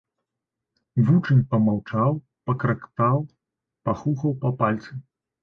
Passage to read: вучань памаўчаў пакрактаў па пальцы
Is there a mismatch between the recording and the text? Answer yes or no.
yes